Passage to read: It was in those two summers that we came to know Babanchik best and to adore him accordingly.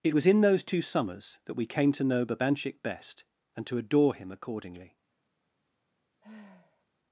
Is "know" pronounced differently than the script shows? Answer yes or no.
no